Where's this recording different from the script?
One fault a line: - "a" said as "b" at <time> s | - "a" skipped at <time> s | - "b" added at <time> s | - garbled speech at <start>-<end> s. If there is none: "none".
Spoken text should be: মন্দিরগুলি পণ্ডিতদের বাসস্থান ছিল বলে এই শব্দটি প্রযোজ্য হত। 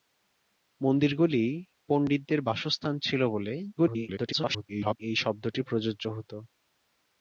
- garbled speech at 3.8-5.0 s